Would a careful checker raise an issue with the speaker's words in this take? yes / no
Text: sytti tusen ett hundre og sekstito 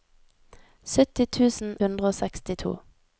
yes